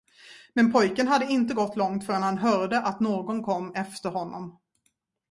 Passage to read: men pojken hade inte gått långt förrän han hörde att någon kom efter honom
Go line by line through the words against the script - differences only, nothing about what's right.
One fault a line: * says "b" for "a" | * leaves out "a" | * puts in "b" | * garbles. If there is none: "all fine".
all fine